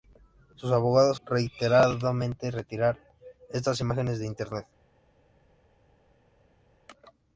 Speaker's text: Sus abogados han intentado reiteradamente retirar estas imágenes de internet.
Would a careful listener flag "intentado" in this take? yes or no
yes